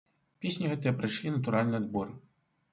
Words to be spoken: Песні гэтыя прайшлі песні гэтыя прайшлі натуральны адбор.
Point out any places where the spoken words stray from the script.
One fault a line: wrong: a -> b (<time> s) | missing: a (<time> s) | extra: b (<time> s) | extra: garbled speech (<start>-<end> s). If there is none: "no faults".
missing: песні гэтыя прайшлі (1.4 s)